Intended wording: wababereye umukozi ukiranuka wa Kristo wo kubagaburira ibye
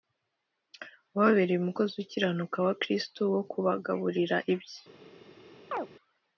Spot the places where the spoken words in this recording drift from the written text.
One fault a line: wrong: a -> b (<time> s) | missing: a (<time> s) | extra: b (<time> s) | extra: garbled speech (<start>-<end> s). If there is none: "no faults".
no faults